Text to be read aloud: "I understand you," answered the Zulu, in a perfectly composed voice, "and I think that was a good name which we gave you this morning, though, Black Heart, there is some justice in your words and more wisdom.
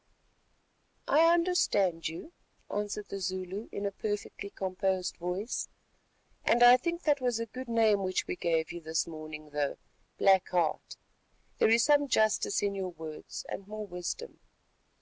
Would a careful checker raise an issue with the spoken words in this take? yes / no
no